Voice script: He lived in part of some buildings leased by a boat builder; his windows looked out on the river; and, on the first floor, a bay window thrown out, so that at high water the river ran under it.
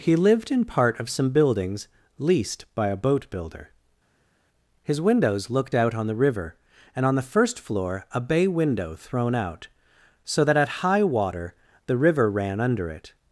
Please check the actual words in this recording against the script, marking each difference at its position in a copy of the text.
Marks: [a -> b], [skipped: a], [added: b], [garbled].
He lived in part of some buildings leased by a boat builder; his windows looked out on the river; and, on the first floor, a bay window thrown out, so that at high water the river ran under it.